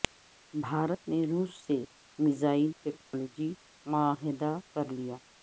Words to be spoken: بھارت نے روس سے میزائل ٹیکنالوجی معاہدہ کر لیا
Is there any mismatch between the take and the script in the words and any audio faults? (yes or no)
yes